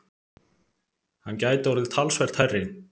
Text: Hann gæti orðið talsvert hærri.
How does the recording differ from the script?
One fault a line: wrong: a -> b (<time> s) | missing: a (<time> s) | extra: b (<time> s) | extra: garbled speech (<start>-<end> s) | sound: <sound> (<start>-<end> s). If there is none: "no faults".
no faults